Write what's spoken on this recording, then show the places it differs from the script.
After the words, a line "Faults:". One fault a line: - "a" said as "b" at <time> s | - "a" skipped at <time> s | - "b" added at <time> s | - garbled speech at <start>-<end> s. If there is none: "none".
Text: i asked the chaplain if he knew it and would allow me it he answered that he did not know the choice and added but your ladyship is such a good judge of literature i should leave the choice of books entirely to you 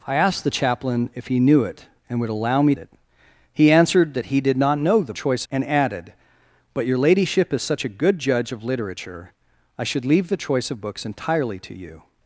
i asked the chaplain if he knew it and would allow me it he answered that he did not know the choice and added but your ladyship is such a good judge of literature i should leave the choice of books entirely to you
Faults:
none